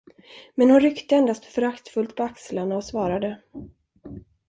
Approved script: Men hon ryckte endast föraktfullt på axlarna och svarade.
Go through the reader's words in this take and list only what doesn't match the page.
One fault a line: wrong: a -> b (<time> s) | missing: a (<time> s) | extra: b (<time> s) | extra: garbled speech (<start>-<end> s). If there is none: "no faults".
no faults